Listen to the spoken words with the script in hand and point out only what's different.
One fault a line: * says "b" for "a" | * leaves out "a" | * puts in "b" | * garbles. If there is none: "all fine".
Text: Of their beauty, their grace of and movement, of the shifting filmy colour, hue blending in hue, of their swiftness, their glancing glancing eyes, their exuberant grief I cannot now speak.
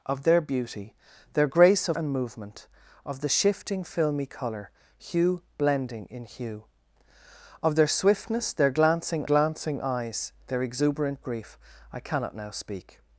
all fine